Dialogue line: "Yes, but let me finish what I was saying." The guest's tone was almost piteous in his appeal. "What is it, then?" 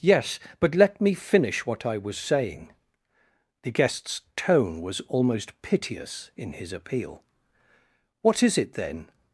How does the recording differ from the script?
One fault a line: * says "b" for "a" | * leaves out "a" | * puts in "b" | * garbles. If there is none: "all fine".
all fine